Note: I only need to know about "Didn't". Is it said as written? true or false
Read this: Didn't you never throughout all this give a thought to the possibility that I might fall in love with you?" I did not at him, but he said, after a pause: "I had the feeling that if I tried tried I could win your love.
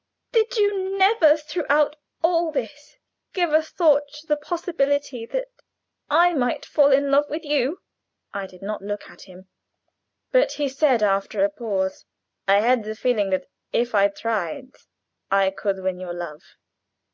false